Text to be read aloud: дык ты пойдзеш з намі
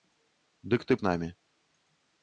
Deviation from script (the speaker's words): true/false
true